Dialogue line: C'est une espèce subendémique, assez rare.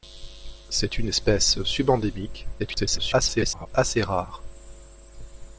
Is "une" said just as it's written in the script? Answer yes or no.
yes